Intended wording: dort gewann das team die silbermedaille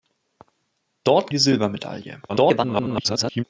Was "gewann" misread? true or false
true